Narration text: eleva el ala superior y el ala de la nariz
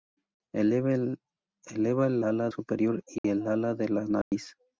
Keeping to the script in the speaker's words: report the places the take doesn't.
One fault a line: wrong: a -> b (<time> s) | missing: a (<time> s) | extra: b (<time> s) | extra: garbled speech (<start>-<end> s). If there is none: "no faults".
no faults